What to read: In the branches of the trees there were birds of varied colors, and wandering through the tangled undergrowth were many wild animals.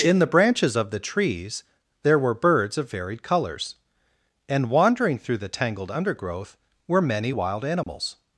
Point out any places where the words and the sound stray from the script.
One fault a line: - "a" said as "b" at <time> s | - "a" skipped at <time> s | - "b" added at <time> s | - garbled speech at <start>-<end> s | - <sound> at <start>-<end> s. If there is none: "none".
- dropout at 7.8-7.9 s